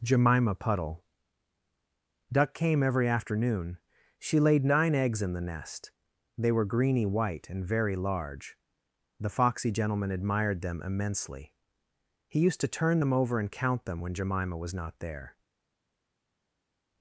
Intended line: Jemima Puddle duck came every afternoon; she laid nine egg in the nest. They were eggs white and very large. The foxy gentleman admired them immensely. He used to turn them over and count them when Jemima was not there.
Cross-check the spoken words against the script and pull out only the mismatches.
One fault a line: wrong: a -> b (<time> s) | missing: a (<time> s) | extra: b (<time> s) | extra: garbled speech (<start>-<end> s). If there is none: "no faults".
wrong: egg -> eggs (4.9 s)
wrong: eggs -> greeny (6.6 s)